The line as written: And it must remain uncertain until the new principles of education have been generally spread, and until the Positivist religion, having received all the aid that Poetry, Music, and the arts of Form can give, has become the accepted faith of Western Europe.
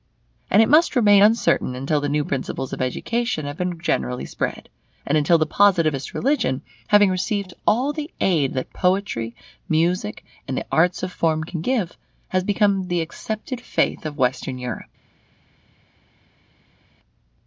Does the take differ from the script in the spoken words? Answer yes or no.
no